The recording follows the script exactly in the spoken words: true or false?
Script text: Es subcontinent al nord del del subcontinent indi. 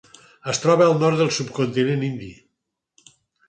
false